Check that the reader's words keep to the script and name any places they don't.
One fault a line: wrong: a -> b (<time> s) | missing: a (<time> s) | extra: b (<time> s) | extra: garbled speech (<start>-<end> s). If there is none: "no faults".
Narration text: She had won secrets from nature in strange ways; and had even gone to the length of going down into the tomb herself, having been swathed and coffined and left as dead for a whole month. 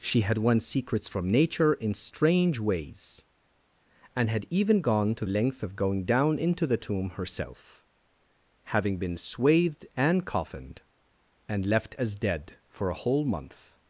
missing: the (5.3 s)